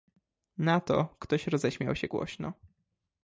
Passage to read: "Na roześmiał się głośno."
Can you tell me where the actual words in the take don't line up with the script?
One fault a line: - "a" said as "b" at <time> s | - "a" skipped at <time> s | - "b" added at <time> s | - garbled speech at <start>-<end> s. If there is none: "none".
- "to ktoś" added at 0.8 s